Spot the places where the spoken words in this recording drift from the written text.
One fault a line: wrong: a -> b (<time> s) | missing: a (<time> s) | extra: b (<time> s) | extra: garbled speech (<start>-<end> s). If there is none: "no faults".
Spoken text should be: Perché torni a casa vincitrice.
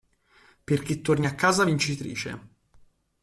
no faults